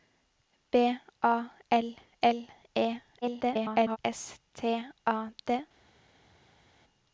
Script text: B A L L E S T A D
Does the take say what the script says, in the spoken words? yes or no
no